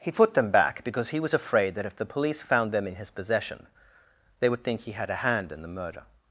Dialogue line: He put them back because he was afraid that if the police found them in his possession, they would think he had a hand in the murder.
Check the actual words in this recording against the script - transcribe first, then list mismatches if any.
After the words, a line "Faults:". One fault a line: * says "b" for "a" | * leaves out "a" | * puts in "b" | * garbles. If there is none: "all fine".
He put them back because he was afraid that if the police found them in his possession, they would think he had a hand in the murder.
Faults:
all fine